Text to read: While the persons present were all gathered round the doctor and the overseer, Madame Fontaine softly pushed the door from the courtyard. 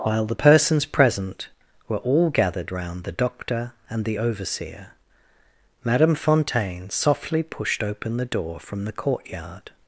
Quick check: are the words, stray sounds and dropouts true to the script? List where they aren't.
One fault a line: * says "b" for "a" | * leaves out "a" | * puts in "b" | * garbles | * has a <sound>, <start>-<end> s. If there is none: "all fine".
* puts in "open"